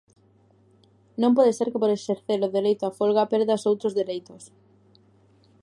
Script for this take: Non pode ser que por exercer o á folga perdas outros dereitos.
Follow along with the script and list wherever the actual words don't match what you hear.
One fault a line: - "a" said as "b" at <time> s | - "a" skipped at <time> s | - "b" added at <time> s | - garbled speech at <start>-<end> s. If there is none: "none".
- "dereito" added at 2.6 s